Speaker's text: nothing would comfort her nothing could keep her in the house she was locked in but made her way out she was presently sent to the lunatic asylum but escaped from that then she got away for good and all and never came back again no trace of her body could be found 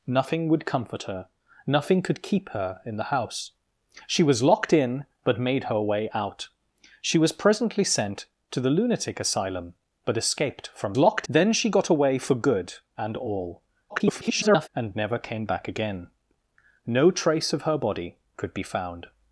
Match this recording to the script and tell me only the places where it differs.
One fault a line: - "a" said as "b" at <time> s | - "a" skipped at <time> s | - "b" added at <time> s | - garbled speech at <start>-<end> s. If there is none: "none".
- "that" said as "locked" at 11.0 s
- garbled speech at 13.9-14.7 s